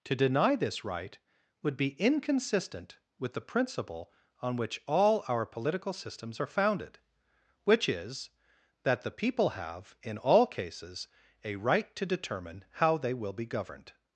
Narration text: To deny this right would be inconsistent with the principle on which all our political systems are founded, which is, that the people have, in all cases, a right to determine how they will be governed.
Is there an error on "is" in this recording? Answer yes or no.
no